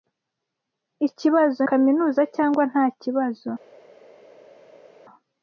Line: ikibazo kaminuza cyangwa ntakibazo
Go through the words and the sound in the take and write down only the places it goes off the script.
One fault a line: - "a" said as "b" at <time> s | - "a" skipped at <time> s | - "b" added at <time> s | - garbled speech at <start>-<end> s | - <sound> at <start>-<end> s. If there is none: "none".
none